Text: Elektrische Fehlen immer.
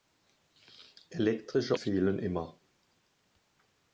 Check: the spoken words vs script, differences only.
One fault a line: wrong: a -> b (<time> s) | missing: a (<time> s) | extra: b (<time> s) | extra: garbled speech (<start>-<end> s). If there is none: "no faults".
no faults